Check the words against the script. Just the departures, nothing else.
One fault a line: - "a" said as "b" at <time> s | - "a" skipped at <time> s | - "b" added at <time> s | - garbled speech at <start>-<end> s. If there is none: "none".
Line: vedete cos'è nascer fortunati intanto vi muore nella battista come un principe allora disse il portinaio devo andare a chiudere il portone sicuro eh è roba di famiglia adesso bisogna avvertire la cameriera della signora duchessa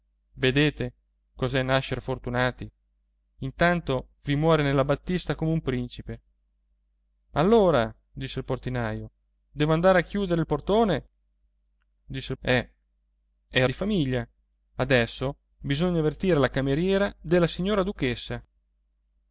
- "sicuro" said as "disse" at 12.0 s
- "roba" skipped at 13.7 s